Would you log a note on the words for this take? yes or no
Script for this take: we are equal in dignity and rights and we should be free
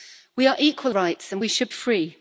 yes